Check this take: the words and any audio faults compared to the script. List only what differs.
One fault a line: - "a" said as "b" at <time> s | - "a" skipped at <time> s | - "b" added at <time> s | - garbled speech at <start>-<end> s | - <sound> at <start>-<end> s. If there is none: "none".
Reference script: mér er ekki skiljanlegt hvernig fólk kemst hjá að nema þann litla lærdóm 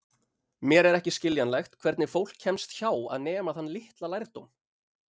none